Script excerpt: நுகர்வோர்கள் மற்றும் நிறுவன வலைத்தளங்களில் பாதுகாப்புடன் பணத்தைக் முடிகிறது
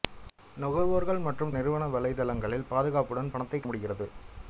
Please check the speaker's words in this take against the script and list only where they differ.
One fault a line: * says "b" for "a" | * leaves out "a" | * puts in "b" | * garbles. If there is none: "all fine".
all fine